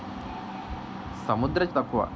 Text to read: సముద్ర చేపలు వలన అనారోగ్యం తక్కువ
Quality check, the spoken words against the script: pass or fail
fail